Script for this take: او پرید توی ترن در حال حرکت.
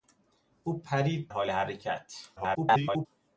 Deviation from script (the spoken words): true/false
true